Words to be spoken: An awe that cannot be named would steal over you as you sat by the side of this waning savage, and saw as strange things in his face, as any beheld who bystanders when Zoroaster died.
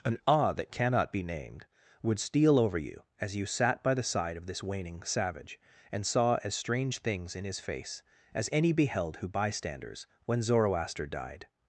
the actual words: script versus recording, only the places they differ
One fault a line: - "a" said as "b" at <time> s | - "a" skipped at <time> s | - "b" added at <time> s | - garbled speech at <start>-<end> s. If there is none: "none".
none